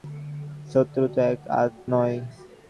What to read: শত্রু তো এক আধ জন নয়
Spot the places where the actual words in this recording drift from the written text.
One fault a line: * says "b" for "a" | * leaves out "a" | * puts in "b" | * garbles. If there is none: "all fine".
* leaves out "জন"